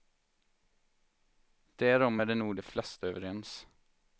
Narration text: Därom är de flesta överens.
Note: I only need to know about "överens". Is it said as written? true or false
true